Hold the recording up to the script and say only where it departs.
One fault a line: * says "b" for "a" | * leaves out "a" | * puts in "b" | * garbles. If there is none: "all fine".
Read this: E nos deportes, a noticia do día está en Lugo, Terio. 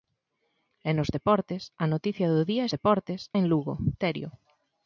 * says "deportes" for "está"